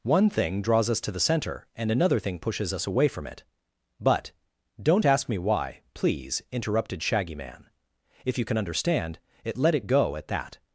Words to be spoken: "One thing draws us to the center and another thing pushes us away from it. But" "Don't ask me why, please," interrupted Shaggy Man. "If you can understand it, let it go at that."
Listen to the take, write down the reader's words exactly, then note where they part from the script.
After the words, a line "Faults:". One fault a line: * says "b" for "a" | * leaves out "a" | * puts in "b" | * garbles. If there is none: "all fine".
"One thing draws us to the center and another thing pushes us away from it. But" "Don't ask me why, please," interrupted Shaggy Man. "If you can understand it, let it go at that."
Faults:
all fine